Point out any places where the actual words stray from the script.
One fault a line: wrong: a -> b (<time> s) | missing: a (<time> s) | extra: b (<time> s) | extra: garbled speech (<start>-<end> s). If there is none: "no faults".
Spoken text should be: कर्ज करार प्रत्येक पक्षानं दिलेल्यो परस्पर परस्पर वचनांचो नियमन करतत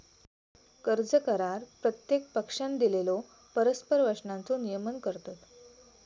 missing: परस्पर (4.0 s)